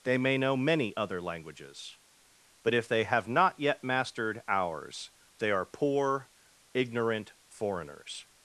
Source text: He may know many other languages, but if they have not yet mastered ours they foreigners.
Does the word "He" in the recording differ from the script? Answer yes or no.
yes